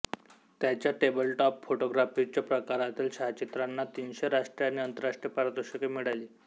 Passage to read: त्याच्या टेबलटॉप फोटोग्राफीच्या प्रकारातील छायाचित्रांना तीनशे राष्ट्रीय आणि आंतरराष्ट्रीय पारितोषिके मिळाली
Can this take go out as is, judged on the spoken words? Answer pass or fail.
pass